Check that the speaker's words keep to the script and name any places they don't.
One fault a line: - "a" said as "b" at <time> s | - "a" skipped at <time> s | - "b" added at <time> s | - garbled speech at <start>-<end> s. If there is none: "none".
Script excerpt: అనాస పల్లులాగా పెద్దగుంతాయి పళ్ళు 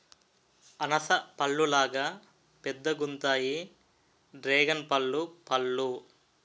- "డ్రేగన్పల్లు" added at 4.3 s